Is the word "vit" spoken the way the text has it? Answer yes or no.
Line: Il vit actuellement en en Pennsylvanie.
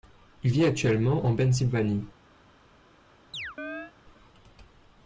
yes